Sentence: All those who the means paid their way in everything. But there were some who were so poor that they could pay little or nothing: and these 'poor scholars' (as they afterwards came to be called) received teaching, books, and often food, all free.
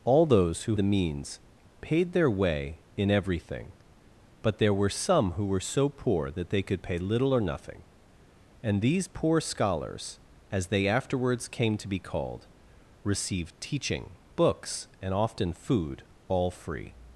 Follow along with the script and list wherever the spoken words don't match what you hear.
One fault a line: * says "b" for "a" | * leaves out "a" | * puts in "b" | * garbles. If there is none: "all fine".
all fine